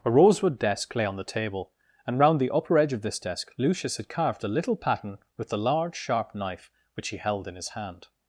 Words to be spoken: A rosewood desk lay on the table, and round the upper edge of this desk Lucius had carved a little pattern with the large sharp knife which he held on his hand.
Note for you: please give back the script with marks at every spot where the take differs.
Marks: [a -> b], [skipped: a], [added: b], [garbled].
A rosewood desk lay on the table, and round the upper edge of this desk Lucius had carved a little pattern with the large sharp knife which he held [on -> in] his hand.